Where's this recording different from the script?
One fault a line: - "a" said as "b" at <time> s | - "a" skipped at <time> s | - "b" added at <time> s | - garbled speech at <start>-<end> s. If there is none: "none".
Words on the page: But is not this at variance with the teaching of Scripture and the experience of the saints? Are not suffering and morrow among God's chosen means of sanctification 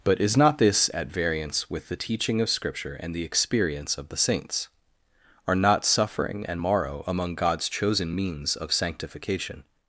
none